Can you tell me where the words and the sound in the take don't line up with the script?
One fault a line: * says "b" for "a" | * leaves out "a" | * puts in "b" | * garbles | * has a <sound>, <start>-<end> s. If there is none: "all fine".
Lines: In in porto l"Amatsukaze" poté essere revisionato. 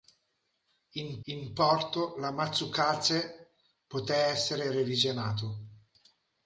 all fine